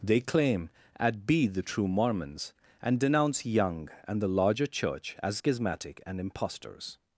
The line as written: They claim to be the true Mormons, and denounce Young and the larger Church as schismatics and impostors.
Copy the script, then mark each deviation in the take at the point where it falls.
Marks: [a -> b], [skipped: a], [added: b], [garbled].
They claim [to -> at] be the true Mormons, and denounce Young and the larger Church as [schismatics -> schismatic] and impostors.